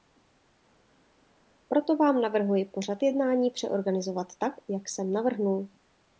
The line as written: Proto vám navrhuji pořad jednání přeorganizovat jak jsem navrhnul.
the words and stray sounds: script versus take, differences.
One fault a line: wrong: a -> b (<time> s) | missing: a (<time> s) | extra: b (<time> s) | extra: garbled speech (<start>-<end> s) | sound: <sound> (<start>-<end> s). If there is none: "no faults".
extra: tak (4.4 s)